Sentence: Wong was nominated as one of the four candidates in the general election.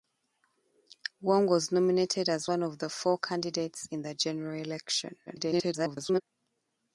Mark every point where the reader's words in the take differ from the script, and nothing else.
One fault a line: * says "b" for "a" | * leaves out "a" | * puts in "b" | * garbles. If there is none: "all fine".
* garbles